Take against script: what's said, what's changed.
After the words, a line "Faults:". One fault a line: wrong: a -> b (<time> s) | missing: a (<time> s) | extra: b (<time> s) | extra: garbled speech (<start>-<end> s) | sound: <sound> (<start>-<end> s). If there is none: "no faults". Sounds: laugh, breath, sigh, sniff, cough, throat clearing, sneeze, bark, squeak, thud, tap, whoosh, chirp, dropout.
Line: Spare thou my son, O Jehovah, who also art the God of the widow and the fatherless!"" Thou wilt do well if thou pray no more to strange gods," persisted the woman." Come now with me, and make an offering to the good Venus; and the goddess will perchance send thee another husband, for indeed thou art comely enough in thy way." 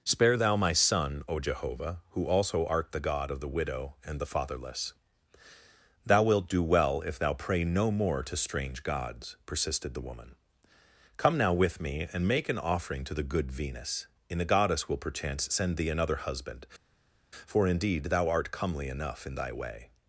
Spare thou my son, O Jehovah, who also art the God of the widow and the fatherless!"" Thou wilt do well if thou pray no more to strange gods," persisted the woman." Come now with me, and make an offering to the good Venus; and the goddess will perchance send thee another husband, for indeed thou art comely enough in thy way."
Faults:
no faults